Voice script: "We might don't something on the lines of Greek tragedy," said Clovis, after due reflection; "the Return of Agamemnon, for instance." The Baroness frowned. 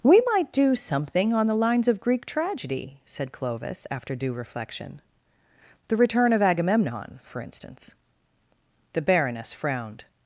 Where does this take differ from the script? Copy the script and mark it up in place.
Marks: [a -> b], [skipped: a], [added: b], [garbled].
"We might [don't -> do] something on the lines of Greek tragedy," said Clovis, after due reflection; "the Return of Agamemnon, for instance." The Baroness frowned.